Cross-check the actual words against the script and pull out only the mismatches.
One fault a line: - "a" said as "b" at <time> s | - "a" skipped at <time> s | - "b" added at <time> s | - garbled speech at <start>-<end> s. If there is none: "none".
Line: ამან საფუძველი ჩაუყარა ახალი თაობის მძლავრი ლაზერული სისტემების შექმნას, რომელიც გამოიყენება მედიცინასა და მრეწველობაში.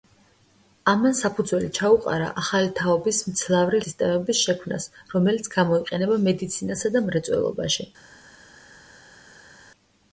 - "ლაზერული" skipped at 3.8 s